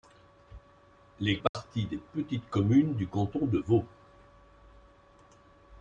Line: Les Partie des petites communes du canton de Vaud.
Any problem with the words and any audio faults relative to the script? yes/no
yes